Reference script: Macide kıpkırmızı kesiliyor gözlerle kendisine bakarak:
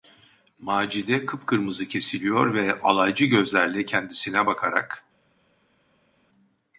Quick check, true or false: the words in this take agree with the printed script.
false